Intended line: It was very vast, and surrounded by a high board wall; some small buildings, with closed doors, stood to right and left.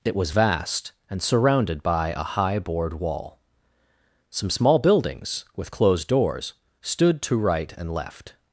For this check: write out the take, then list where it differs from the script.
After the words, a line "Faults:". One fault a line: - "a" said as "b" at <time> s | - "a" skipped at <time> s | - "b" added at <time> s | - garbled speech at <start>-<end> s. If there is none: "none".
It was vast, and surrounded by a high board wall; some small buildings, with closed doors, stood to right and left.
Faults:
- "very" skipped at 0.3 s